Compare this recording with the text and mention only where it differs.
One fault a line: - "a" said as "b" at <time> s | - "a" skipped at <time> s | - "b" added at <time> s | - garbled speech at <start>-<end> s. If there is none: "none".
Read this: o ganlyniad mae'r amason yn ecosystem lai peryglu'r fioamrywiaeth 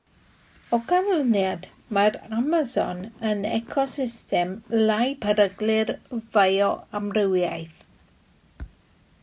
none